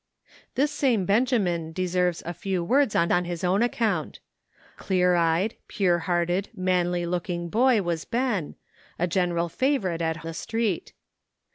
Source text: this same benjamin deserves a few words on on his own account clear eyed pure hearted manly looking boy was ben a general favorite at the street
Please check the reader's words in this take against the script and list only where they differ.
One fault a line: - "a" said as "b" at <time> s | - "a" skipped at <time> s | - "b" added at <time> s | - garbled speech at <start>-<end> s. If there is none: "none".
none